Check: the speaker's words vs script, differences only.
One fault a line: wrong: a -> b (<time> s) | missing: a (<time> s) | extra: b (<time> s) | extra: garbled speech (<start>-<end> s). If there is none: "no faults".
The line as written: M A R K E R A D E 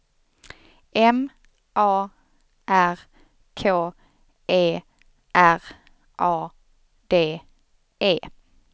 no faults